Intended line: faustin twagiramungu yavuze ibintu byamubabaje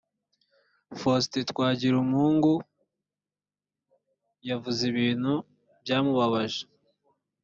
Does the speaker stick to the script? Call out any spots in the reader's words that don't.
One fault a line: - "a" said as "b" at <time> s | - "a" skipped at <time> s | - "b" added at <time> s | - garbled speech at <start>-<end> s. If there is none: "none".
none